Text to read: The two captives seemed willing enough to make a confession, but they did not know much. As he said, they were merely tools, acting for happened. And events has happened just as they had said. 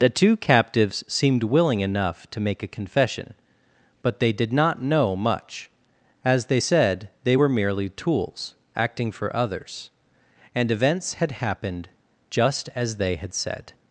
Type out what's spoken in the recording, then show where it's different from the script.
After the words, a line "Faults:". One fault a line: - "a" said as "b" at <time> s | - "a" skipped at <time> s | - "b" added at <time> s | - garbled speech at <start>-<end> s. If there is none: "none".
The two captives seemed willing enough to make a confession, but they did not know much. As they said, they were merely tools, acting for others. And events had happened just as they had said.
Faults:
- "he" said as "they" at 6.5 s
- "happened" said as "others" at 9.3 s
- "has" said as "had" at 11.1 s